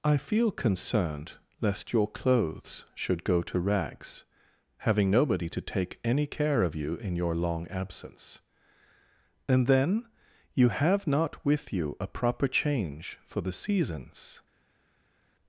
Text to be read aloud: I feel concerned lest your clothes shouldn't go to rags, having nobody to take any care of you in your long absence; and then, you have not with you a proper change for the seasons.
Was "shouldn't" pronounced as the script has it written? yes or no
no